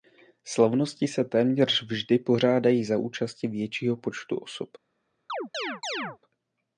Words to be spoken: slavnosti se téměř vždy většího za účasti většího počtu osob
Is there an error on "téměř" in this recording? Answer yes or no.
no